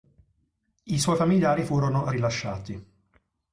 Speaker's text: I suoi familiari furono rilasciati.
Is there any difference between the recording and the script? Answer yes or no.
no